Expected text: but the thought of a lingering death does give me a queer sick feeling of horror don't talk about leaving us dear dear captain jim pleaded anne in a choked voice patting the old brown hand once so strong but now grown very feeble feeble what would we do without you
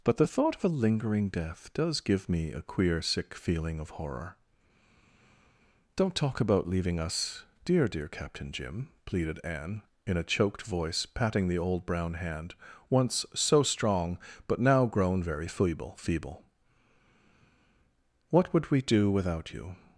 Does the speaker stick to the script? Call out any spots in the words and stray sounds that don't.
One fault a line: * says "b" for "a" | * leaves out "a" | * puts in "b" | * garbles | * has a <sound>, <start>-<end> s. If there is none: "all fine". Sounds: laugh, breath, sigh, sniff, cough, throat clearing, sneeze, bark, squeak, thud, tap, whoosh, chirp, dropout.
all fine